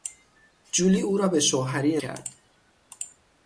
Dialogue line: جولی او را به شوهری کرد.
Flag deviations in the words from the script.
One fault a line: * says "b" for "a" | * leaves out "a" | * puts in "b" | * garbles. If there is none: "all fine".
all fine